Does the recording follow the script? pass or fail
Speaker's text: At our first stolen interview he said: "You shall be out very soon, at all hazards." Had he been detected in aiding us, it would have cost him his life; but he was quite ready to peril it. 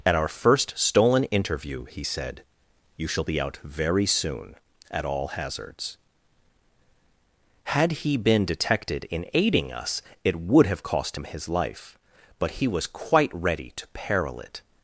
pass